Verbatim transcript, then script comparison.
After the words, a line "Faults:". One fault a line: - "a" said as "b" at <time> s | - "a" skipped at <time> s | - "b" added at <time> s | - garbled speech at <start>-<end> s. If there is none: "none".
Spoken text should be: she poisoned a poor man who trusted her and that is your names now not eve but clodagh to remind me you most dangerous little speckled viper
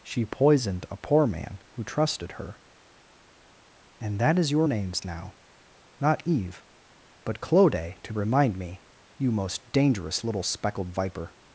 she poisoned a poor man who trusted her and that is your names now not eve but clodagh to remind me you most dangerous little speckled viper
Faults:
none